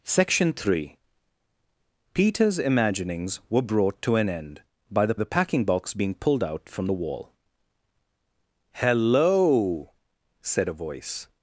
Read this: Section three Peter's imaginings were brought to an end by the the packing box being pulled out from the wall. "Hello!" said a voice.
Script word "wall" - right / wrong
right